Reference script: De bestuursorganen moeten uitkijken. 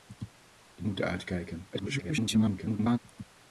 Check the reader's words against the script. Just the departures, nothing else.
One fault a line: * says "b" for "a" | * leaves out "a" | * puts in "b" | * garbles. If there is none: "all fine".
* leaves out "bestuursorganen"
* garbles